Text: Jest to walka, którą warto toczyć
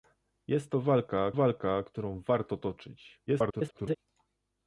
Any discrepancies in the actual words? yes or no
yes